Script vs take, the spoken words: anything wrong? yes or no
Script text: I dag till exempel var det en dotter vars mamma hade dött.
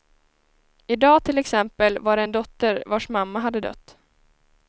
no